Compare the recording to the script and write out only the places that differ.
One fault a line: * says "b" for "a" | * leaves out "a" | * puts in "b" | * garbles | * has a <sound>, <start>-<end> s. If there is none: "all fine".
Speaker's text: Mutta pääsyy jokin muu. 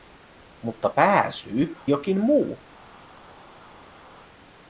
all fine